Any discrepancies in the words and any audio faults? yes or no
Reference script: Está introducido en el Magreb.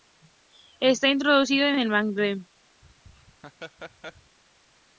yes